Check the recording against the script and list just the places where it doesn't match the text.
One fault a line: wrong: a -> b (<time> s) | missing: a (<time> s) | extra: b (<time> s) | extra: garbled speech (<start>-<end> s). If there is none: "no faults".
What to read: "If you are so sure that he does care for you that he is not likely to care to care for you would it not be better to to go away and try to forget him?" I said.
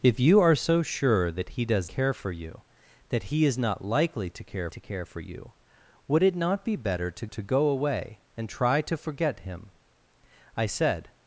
no faults